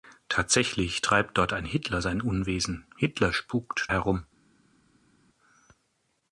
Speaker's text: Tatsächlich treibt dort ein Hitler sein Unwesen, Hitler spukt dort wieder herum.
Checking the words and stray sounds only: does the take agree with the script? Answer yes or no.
no